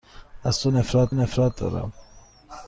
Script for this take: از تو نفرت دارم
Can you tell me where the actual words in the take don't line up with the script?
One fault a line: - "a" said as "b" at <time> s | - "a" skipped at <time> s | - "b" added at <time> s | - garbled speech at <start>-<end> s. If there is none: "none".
- "نفرت" added at 1.1 s